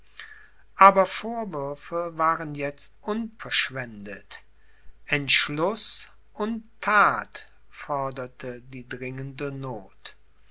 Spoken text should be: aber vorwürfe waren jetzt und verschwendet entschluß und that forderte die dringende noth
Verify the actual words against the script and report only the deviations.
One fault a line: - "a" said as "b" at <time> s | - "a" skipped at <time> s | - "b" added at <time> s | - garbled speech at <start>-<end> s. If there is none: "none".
none